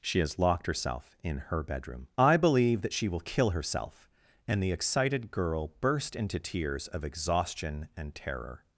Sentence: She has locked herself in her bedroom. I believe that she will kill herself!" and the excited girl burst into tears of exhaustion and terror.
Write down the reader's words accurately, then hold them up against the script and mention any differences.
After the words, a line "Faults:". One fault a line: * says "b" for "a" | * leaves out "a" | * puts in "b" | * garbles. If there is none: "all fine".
She has locked herself in her bedroom. I believe that she will kill herself!" and the excited girl burst into tears of exhaustion and terror.
Faults:
all fine